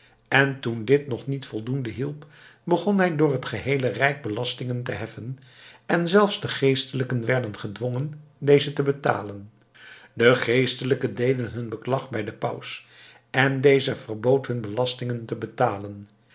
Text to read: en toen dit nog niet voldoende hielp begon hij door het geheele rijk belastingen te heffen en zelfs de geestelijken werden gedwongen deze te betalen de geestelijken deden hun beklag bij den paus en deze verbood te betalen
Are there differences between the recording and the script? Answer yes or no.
yes